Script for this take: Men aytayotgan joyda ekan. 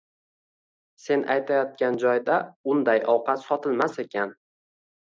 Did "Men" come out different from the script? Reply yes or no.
yes